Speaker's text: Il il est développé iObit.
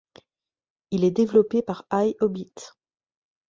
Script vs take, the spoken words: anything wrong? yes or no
yes